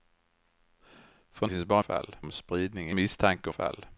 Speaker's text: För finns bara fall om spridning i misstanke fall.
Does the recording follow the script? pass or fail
pass